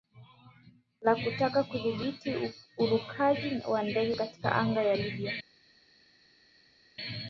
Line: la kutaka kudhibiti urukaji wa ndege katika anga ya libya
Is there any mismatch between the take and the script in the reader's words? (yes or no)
no